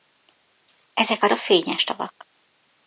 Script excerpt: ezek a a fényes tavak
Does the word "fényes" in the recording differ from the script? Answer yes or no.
no